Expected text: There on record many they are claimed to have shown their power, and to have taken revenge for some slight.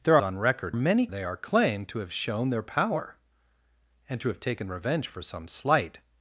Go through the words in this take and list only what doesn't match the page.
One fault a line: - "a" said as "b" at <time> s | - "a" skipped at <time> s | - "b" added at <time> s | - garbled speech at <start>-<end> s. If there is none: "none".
none